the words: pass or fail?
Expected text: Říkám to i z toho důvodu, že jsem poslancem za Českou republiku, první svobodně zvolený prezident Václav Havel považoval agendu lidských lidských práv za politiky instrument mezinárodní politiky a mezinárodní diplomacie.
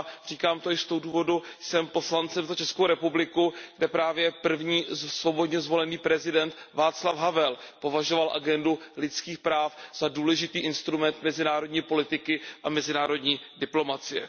fail